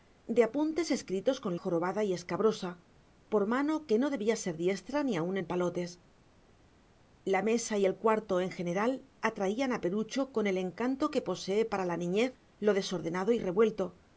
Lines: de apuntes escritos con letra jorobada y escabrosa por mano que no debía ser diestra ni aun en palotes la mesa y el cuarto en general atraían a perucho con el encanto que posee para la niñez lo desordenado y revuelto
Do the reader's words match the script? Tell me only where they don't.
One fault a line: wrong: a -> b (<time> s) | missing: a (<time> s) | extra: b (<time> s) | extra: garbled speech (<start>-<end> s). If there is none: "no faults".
missing: letra (1.6 s)